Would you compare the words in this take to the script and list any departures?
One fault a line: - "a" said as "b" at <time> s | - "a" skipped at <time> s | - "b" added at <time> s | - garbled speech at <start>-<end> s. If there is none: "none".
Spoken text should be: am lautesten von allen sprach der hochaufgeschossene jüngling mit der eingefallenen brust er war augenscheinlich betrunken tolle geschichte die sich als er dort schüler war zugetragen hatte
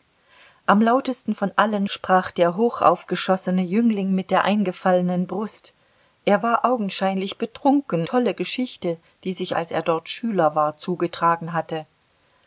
none